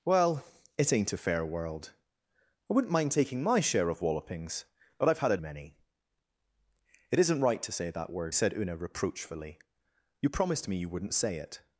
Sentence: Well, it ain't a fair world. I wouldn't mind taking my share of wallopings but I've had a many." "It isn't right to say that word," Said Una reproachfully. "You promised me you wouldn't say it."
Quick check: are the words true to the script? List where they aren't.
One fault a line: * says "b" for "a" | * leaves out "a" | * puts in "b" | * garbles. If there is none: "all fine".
all fine